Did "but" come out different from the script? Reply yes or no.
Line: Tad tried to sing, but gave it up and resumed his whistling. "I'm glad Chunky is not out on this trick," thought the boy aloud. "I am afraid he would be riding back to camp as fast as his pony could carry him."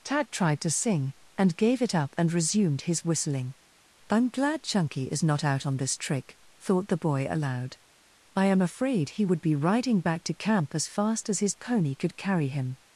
yes